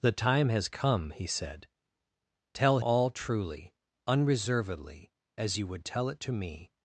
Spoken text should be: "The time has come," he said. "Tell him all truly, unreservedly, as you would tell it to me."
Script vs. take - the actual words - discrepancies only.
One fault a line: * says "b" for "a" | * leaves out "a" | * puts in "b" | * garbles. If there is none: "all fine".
* leaves out "him"